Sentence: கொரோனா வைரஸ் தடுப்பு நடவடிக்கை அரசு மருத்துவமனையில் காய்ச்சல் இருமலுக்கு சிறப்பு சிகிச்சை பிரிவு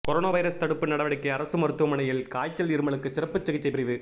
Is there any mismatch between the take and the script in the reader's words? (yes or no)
no